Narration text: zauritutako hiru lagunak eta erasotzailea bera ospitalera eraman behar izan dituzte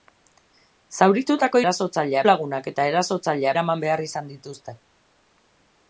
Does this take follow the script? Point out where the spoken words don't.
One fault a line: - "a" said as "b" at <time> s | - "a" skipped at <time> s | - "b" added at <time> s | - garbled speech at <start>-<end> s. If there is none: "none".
- "hiru" said as "erasotzailea" at 1.6 s
- "bera ospitalera" skipped at 3.5 s